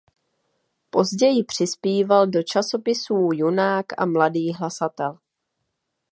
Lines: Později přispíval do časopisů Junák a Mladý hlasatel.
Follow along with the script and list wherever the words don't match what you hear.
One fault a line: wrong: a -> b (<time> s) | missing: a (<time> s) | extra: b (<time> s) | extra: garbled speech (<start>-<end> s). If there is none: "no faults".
no faults